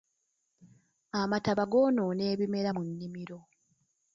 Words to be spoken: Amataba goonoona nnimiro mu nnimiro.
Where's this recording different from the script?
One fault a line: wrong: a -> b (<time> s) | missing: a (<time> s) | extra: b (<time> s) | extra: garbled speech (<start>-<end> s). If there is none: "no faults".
wrong: nnimiro -> ebimera (2.3 s)